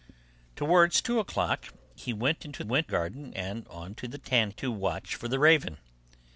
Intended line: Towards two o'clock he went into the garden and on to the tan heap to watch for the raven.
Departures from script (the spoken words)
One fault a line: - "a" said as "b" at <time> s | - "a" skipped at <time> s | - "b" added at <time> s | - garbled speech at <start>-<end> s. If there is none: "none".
- "the" said as "went" at 2.6 s
- "heap" skipped at 4.5 s